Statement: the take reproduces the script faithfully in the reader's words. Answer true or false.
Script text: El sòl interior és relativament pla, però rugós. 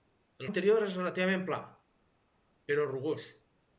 false